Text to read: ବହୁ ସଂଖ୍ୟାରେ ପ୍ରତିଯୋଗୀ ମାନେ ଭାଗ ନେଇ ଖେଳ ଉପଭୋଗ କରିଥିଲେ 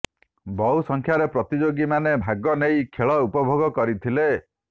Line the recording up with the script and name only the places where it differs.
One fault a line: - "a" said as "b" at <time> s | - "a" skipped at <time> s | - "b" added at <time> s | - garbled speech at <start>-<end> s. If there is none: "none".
none